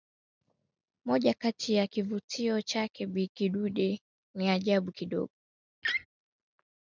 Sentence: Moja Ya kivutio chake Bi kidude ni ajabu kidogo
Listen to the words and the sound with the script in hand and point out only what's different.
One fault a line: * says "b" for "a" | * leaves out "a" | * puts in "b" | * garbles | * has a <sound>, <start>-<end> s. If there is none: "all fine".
* puts in "Kati"
* has a laugh, 5.8-6.1 s